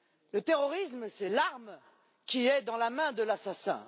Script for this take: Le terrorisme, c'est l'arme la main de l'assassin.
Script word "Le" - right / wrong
right